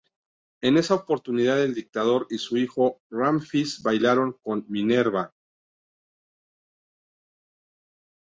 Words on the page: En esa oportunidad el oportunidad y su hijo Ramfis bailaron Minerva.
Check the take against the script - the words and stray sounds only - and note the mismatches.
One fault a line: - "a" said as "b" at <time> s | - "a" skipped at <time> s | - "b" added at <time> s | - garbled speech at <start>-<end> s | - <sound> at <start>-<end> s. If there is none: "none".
- "oportunidad" said as "dictador" at 1.8 s
- "con" added at 4.4 s